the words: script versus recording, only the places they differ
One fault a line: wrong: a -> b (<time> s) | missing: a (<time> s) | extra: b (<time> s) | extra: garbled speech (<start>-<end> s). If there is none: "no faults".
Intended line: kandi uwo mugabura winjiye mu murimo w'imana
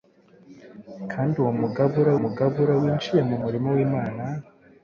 extra: mugabura (2.2 s)